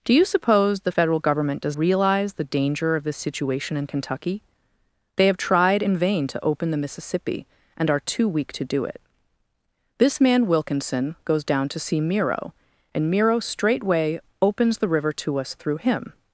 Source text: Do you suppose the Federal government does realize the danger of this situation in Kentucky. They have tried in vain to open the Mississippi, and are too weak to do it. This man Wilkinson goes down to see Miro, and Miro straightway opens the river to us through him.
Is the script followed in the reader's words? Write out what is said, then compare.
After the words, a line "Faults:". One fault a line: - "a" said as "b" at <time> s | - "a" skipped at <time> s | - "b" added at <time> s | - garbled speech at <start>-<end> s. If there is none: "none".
Do you suppose the Federal government does realize the danger of this situation in Kentucky. They have tried in vain to open the Mississippi, and are too weak to do it. This man Wilkinson goes down to see Miro, and Miro straightway opens the river to us through him.
Faults:
none